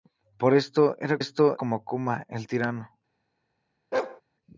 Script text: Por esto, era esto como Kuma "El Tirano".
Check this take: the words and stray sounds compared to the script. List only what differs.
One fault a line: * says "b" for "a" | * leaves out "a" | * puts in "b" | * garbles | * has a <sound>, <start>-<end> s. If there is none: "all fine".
* has a bark, 3.9-4.2 s